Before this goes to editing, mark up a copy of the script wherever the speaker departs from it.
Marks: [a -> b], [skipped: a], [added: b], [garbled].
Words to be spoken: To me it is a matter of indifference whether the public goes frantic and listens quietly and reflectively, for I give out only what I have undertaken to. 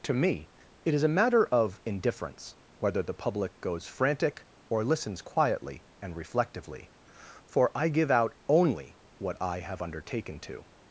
To me it is a matter of indifference whether the public goes frantic [and -> or] listens quietly and reflectively, for I give out only what I have undertaken to.